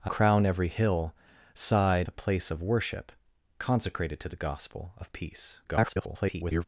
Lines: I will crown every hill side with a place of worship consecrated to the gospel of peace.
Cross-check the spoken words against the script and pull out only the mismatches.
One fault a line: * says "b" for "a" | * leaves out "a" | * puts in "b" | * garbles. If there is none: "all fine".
* leaves out "will"
* leaves out "with"
* garbles